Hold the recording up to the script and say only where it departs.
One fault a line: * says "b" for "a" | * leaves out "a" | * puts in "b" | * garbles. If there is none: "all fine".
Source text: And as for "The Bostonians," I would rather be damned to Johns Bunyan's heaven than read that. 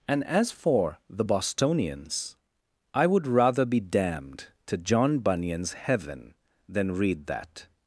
* says "John" for "Johns"